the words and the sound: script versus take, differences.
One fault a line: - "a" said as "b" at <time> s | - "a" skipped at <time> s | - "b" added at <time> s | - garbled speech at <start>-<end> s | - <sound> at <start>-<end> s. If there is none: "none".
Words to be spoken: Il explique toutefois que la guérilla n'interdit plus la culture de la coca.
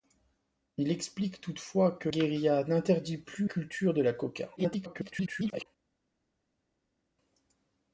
- "la" skipped at 2.1 s
- "la" skipped at 3.5 s
- garbled speech at 4.6-5.7 s